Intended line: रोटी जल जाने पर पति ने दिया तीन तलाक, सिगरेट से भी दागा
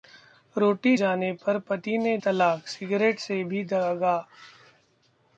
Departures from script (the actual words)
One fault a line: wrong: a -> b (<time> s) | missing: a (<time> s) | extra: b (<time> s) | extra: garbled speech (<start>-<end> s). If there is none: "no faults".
missing: जल (0.9 s)
missing: दिया तीन (2.2 s)